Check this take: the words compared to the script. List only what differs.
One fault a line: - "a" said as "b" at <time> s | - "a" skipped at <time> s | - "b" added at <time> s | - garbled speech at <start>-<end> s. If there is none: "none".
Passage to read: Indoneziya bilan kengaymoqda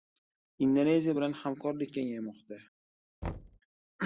- "hamkorlik" added at 1.4 s